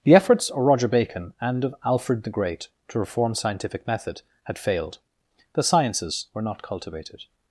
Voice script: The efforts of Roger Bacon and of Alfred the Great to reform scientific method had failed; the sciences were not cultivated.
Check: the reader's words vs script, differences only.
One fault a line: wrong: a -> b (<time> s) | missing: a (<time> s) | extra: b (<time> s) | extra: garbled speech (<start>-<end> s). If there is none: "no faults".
no faults